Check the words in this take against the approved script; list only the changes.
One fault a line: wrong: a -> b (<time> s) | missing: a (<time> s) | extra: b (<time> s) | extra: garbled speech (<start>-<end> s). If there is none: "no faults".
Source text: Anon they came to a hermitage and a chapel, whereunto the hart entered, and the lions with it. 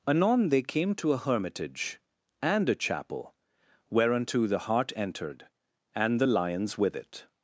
no faults